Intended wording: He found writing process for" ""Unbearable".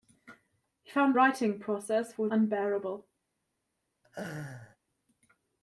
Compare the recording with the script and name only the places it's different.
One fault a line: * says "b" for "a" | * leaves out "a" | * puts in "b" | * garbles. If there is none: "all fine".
all fine